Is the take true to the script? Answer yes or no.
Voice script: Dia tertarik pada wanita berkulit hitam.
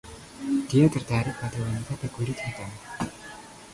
yes